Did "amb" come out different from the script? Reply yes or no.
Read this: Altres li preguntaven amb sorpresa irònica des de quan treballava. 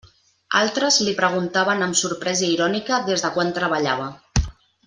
no